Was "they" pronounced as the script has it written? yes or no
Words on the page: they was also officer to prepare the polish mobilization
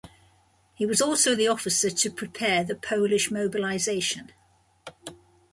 no